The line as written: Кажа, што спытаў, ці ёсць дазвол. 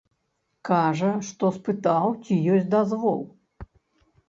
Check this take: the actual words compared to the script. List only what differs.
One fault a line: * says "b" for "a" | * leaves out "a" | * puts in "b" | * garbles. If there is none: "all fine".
all fine